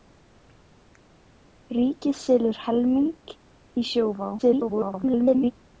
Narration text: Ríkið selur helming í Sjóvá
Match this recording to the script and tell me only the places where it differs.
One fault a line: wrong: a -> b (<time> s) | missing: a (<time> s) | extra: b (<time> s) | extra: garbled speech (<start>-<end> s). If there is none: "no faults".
extra: garbled speech (4.4-5.5 s)